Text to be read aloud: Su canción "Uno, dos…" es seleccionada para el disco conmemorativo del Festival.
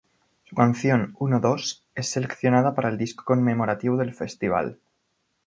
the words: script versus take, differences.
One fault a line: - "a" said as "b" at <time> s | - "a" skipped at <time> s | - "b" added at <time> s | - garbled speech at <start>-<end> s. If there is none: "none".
none